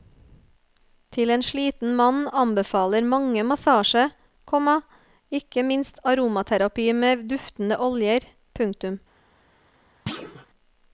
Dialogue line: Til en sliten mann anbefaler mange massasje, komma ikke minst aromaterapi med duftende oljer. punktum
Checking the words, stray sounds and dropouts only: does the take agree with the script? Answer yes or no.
no